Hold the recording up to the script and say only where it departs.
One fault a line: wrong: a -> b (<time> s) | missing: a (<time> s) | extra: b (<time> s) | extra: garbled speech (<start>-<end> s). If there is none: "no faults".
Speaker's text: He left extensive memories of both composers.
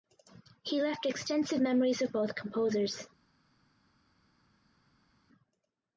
no faults